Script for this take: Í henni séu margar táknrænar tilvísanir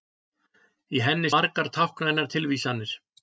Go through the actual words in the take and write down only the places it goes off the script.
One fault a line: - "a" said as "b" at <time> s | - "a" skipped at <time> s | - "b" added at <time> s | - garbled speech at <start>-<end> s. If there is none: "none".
- "séu" skipped at 1.3 s